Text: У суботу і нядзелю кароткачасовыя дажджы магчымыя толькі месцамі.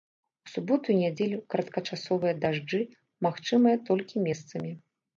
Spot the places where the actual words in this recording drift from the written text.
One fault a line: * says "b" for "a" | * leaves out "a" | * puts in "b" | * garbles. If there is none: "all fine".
all fine